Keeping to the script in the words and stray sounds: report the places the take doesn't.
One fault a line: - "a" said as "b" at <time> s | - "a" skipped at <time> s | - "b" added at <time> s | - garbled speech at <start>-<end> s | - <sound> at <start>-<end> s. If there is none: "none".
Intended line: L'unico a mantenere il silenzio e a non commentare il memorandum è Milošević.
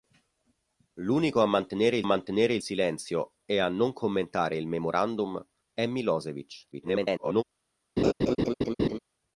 - "mantenere il" added at 2.0 s
- garbled speech at 6.7-7.4 s
- laugh at 8.0-9.0 s